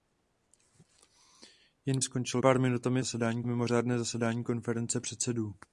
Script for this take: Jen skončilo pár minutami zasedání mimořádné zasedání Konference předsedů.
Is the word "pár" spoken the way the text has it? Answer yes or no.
yes